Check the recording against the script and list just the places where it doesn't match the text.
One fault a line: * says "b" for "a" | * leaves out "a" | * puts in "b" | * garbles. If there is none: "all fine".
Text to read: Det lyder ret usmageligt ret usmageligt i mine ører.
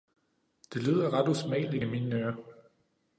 * leaves out "ret usmageligt"